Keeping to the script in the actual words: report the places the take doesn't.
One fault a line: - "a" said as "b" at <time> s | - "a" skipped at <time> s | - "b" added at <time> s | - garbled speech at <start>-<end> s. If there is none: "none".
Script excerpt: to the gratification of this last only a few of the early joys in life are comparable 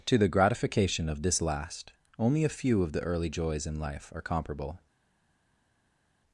none